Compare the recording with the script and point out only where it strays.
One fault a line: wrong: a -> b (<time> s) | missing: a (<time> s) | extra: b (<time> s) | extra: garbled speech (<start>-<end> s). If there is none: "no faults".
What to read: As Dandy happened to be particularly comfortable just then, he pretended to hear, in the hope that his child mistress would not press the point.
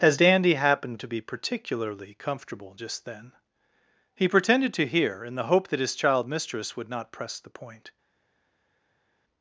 no faults